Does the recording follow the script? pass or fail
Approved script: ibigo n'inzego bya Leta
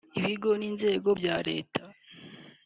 pass